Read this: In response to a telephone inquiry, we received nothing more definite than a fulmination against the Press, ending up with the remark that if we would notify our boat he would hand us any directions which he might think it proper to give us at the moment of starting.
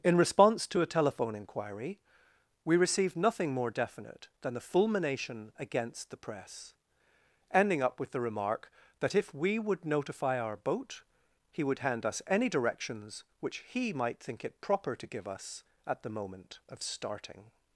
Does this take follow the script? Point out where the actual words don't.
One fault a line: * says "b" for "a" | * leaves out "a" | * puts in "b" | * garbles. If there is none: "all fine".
* says "the" for "a"